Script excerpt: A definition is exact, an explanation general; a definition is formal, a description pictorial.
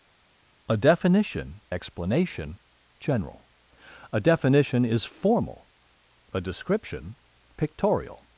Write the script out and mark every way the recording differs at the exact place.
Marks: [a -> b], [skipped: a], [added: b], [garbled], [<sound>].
A definition [skipped: is exact, an] explanation general; a definition is formal, a description pictorial.